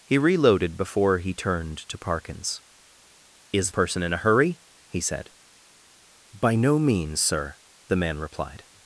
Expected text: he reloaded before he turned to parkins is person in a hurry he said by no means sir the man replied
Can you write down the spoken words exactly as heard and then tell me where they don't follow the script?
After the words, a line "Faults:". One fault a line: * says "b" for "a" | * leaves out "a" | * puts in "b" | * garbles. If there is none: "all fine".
he reloaded before he turned to parkins is person in a hurry he said by no means sir the man replied
Faults:
all fine